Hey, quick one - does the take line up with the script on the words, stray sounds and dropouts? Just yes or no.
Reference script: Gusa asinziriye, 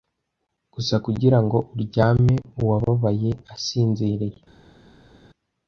no